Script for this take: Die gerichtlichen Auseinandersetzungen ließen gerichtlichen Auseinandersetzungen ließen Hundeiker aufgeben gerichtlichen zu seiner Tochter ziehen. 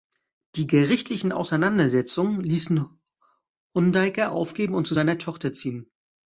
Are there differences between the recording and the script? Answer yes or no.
yes